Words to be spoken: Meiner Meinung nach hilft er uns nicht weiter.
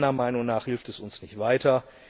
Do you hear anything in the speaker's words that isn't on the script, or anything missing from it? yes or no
yes